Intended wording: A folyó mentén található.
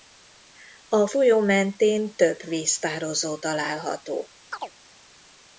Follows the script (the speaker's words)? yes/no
no